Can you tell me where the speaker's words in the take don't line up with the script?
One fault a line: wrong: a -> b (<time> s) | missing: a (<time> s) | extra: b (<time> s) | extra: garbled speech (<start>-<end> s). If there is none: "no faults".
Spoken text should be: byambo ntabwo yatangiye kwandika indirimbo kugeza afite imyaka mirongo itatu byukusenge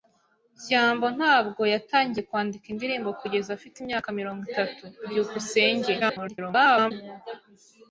extra: garbled speech (6.0-6.9 s)